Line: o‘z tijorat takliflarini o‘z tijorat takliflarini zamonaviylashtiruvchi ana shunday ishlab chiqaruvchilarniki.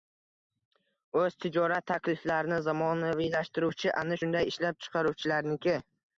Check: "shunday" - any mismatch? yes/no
no